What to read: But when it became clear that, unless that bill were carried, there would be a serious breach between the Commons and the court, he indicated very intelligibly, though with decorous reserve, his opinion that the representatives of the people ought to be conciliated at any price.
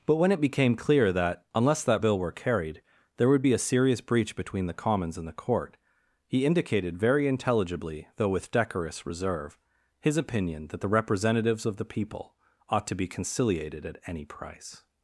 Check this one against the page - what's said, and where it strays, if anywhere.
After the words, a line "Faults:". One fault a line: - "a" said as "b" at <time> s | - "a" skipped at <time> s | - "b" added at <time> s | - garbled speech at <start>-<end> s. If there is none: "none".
But when it became clear that, unless that bill were carried, there would be a serious breach between the Commons and the court, he indicated very intelligibly, though with decorous reserve, his opinion that the representatives of the people ought to be conciliated at any price.
Faults:
none